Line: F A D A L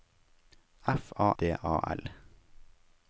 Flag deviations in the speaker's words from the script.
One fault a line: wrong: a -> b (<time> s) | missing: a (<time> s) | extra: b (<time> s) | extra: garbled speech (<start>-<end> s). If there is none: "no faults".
no faults